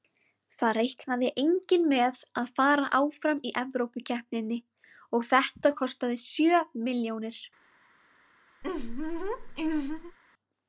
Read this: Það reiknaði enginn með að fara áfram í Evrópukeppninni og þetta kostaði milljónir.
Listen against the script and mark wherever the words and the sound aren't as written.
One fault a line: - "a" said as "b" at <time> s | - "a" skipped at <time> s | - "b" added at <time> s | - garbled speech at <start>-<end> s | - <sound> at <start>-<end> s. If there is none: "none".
- "sjö" added at 6.3 s
- laugh at 8.6-10.2 s